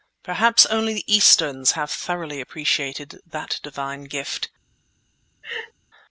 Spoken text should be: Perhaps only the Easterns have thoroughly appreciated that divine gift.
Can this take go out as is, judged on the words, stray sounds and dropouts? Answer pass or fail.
fail